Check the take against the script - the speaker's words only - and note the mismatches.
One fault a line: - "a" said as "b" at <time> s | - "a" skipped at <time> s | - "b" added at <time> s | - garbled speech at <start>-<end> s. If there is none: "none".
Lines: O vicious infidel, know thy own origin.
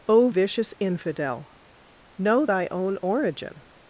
none